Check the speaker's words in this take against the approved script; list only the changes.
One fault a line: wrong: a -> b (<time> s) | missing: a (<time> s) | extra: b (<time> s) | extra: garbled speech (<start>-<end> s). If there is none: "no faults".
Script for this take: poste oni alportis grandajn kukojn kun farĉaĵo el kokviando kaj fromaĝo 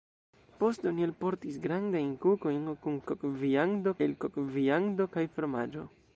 wrong: farĉaĵo -> kokviando (3.1 s)